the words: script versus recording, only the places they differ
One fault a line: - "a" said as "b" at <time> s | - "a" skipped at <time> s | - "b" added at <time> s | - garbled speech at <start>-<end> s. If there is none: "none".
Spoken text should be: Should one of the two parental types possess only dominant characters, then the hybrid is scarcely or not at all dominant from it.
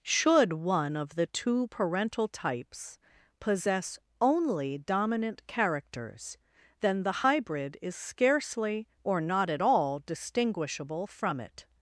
- "dominant" said as "distinguishable" at 10.1 s